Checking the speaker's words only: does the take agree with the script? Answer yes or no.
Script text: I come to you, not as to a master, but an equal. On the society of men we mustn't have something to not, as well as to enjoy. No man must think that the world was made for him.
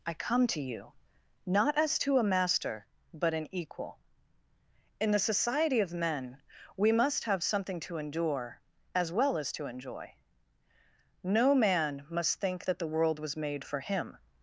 no